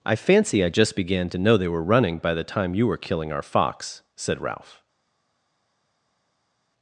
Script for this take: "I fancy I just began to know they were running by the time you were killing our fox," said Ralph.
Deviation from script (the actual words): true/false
false